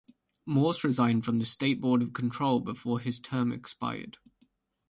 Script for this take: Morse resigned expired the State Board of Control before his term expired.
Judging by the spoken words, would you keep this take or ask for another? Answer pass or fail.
fail